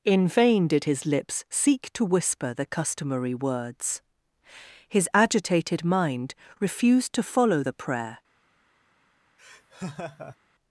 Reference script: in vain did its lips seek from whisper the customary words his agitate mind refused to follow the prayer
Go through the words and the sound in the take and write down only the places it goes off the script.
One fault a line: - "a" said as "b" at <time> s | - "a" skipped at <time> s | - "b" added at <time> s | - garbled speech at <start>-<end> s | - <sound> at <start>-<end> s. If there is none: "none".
- "its" said as "his" at 0.8 s
- "from" said as "to" at 1.9 s
- "agitate" said as "agitated" at 5.1 s
- laugh at 9.4-10.4 s